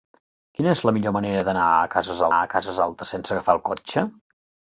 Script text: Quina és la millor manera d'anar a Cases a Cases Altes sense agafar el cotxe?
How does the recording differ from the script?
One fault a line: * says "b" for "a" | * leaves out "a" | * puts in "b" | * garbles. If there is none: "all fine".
all fine